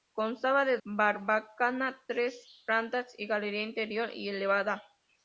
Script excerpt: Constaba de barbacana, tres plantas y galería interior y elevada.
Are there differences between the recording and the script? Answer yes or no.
no